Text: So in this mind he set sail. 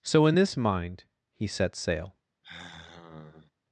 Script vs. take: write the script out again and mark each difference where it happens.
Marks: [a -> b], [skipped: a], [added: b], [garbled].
So in this mind he set sail.